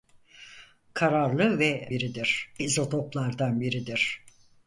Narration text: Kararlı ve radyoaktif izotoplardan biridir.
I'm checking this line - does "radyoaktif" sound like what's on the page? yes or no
no